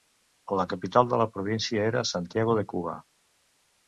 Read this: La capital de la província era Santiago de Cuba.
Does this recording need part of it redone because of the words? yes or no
no